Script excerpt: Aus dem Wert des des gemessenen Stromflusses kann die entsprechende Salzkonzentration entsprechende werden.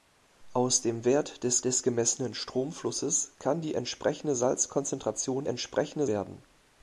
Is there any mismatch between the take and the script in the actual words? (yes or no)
no